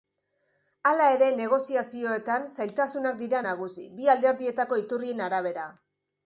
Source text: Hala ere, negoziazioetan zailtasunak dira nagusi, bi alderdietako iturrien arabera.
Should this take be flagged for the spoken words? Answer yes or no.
no